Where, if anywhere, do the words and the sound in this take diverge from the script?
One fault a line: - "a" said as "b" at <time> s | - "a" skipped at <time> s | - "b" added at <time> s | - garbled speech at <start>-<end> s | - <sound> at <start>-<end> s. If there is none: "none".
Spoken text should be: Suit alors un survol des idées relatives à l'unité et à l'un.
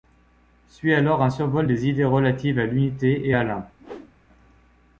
- whoosh at 3.8-4.1 s